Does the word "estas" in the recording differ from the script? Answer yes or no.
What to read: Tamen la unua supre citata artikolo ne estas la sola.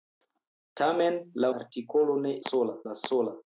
yes